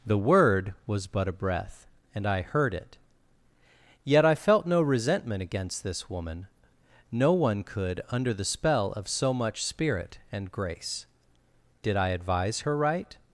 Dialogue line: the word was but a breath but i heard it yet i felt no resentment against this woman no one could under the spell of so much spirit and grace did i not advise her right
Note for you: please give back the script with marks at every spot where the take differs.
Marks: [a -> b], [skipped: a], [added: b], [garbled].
the word was but a breath [but -> and] i heard it yet i felt no resentment against this woman no one could under the spell of so much spirit and grace did i [skipped: not] advise her right